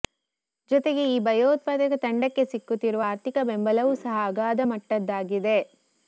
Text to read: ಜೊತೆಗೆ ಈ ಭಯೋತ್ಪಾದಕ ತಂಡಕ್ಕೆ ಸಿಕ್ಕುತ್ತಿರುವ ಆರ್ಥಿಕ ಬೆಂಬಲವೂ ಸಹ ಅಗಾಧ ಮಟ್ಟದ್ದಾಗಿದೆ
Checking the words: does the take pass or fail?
pass